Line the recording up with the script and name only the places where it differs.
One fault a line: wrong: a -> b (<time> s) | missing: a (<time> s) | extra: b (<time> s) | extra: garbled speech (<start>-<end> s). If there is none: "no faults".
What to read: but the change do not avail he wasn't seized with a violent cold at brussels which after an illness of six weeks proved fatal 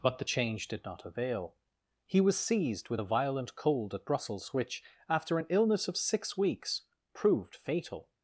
wrong: do -> did (0.7 s)
wrong: wasn't -> was (2.2 s)